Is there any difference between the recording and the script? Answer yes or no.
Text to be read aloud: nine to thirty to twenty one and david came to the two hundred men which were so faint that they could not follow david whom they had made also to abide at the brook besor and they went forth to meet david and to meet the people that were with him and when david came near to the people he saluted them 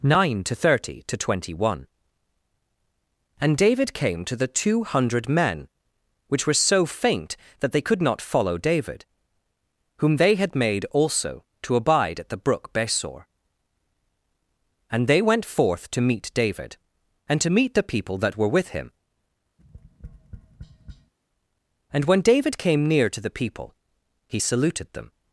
no